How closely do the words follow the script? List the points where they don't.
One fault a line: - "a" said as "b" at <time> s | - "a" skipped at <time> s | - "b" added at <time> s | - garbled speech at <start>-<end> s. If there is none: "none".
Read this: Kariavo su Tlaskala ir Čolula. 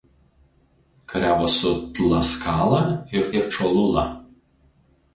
- "ir" added at 3.4 s